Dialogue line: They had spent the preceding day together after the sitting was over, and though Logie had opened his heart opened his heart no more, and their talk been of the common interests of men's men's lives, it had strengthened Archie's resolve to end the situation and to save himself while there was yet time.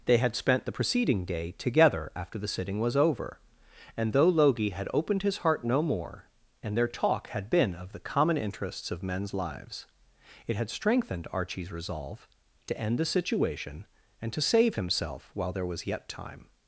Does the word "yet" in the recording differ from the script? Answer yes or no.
no